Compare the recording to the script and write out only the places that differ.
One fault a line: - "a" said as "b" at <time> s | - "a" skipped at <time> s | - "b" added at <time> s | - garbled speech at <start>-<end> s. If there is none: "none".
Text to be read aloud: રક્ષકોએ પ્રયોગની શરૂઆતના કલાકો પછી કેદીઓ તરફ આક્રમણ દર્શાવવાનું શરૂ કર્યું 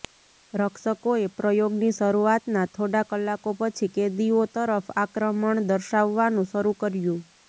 - "થોડા" added at 2.7 s